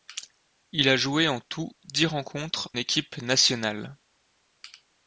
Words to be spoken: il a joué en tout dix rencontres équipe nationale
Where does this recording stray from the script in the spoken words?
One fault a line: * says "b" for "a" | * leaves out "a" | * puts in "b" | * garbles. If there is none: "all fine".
all fine